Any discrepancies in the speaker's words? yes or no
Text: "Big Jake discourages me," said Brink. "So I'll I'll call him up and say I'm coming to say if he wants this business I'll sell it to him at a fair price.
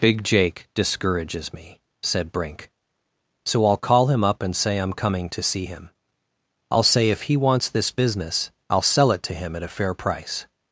yes